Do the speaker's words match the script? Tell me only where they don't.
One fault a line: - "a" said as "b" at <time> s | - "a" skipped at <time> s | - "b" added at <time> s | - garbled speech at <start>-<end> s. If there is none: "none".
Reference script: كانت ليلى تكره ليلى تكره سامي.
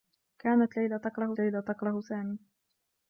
none